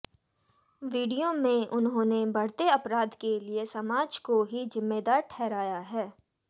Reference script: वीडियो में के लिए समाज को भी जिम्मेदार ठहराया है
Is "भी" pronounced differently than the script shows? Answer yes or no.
yes